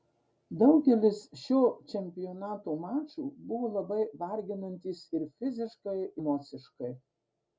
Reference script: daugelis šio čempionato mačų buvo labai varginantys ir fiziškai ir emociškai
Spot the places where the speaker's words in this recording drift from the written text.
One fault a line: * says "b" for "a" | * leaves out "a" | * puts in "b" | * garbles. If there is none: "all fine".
* leaves out "ir"